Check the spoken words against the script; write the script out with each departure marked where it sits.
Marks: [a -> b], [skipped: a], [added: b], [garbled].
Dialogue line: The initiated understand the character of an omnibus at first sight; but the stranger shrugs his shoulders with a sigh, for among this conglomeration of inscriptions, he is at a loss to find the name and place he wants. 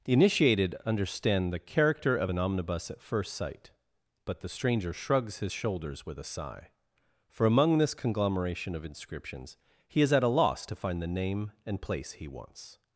The initiated understand the character of an omnibus at first sight; but the stranger shrugs his shoulders with a sigh, for among this conglomeration of inscriptions, he is at a loss to find the name and place he wants.